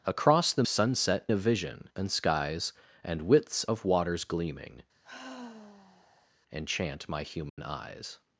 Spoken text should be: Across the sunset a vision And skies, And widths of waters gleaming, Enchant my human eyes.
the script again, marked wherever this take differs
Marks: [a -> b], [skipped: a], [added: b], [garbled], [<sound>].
Across the sunset a vision And skies, And widths of waters gleaming, [sigh] Enchant my human [dropout] eyes.